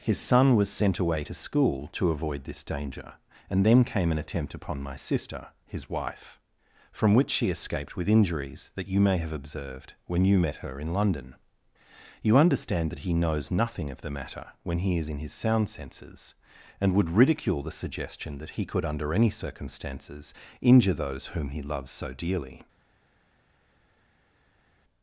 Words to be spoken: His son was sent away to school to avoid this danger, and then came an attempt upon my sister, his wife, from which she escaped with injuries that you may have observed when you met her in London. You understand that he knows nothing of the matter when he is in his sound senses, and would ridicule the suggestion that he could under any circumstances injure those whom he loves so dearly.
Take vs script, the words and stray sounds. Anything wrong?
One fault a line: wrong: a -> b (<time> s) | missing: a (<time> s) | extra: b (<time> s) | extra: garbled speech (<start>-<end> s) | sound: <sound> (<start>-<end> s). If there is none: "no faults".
no faults